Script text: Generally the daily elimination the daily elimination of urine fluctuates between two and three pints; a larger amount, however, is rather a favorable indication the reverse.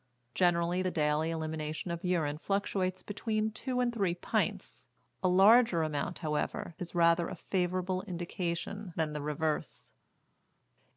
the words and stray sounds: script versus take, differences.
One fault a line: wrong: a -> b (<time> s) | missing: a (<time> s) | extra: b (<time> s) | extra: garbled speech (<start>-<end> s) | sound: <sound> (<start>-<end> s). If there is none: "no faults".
missing: the daily elimination (1.9 s)
extra: than (8.9 s)